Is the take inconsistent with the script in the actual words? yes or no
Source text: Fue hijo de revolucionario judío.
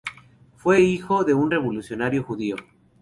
yes